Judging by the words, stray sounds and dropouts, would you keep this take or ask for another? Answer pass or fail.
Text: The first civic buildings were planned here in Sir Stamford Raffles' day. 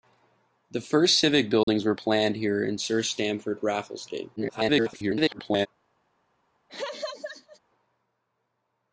fail